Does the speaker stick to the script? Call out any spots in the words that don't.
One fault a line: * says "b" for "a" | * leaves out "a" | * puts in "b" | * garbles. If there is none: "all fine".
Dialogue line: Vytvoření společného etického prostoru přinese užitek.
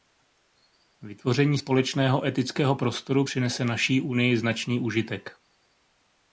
* puts in "naší Unii značný"